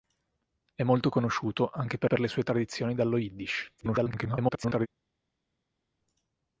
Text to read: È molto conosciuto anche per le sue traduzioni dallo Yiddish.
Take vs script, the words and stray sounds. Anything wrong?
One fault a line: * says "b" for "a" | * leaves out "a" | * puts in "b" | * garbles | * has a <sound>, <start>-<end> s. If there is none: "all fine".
* puts in "per"
* garbles